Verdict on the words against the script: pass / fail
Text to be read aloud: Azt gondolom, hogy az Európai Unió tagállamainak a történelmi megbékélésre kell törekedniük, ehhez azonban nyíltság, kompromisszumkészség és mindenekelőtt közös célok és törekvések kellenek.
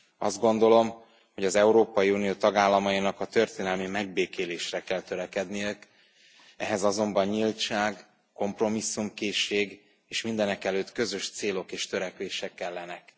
pass